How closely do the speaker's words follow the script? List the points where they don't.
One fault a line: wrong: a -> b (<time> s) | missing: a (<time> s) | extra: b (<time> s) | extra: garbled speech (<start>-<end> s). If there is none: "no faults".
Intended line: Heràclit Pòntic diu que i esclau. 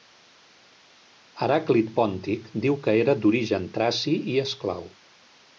extra: era d'origen traci (3.0 s)